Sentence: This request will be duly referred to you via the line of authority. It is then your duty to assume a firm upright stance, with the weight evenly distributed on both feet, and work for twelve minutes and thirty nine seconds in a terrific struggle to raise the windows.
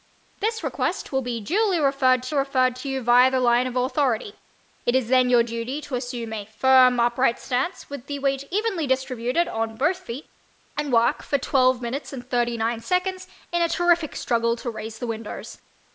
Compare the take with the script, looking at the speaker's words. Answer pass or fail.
fail